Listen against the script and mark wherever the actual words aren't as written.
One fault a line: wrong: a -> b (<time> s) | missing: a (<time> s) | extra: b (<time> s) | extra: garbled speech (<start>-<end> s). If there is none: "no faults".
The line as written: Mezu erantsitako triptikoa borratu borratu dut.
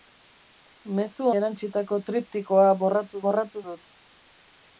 no faults